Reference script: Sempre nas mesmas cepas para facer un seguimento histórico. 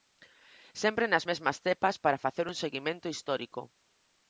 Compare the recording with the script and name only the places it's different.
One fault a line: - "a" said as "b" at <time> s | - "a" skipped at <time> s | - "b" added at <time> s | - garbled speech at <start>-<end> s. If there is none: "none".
none